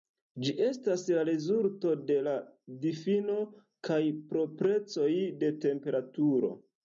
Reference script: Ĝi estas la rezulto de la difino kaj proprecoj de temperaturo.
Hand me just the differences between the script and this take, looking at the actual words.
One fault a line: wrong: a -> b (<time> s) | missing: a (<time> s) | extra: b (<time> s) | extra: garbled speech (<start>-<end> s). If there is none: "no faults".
no faults